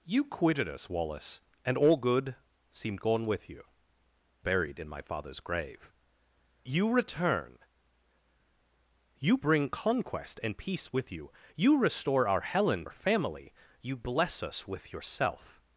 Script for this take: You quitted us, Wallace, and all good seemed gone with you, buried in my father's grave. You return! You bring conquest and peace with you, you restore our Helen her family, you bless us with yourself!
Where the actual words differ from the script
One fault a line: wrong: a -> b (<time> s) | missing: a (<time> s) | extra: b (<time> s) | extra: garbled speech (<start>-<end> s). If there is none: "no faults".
no faults